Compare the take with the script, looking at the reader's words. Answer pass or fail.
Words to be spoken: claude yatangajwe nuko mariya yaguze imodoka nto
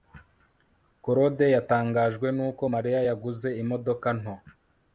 pass